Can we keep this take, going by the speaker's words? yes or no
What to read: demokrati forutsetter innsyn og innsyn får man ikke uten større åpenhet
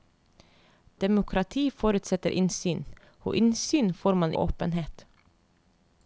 no